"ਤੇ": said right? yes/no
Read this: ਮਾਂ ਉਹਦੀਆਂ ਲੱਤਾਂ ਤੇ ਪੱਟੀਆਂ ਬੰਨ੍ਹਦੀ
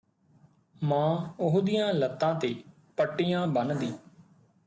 yes